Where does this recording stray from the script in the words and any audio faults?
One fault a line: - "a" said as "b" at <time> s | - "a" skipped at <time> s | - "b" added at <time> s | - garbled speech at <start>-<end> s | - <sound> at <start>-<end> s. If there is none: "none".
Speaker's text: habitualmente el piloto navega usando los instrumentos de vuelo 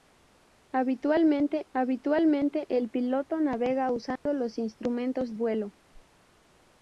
- "habitualmente" added at 1.7 s
- dropout at 4.2-4.3 s
- "de" skipped at 5.3 s
- whoosh at 5.9-6.1 s